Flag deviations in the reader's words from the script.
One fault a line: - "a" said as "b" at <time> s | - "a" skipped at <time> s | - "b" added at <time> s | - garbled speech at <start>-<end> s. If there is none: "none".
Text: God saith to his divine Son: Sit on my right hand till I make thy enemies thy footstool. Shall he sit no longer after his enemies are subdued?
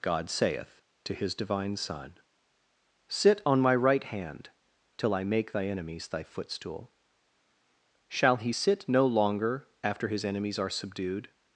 none